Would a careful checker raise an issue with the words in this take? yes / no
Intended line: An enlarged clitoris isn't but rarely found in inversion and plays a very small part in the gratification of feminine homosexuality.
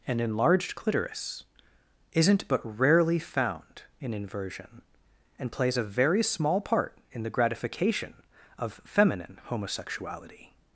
no